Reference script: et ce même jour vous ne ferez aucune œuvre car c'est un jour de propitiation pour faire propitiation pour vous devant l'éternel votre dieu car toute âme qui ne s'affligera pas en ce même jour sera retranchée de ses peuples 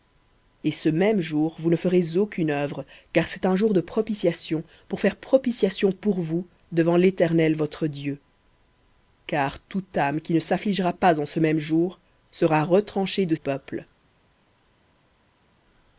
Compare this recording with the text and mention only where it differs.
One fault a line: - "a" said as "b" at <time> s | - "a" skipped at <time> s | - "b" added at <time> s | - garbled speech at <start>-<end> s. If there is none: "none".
- "ses" skipped at 13.3 s